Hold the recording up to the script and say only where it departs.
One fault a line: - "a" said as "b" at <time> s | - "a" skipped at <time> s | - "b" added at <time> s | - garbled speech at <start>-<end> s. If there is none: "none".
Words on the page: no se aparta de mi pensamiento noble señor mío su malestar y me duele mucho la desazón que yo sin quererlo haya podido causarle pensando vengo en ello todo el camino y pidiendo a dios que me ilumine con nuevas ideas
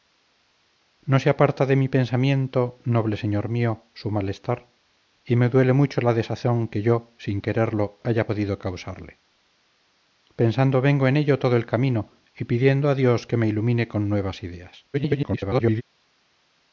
- garbled speech at 14.9-15.8 s